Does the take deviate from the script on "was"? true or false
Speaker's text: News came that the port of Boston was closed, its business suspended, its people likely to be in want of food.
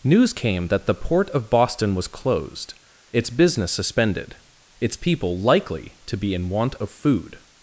false